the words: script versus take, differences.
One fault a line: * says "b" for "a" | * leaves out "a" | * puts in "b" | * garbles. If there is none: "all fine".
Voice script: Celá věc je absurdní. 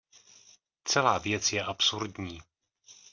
all fine